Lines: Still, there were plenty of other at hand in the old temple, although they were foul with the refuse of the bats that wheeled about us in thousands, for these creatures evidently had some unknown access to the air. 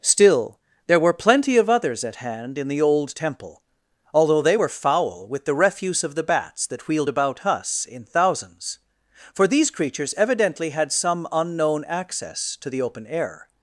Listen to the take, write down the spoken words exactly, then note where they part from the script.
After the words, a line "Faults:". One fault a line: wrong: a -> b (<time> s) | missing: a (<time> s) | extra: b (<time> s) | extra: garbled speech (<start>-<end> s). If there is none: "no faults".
Still, there were plenty of others at hand in the old temple, although they were foul with the refuse of the bats that wheeled about us in thousands, for these creatures evidently had some unknown access to the open air.
Faults:
wrong: other -> others (1.7 s)
extra: open (12.8 s)